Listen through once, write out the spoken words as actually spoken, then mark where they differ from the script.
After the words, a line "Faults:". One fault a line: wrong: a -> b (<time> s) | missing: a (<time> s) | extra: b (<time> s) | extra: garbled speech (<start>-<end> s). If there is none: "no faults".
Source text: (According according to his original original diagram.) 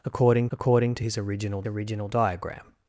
(According according to his original original diagram.)
Faults:
no faults